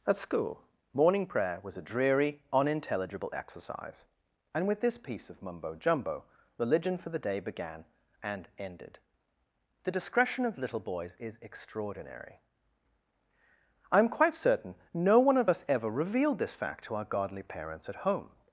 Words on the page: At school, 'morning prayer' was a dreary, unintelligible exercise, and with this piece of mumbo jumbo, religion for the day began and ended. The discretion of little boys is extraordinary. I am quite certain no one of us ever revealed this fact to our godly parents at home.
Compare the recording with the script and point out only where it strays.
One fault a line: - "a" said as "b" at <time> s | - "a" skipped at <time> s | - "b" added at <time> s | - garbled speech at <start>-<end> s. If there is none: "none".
none